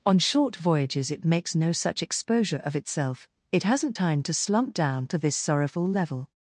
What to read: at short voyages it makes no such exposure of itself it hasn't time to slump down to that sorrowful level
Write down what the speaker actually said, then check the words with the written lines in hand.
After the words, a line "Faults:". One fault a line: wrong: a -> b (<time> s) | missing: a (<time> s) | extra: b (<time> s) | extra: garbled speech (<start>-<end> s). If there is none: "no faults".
on short voyages it makes no such exposure of itself it hasn't time to slump down to this sorrowful level
Faults:
wrong: at -> on (0.0 s)
wrong: that -> this (5.2 s)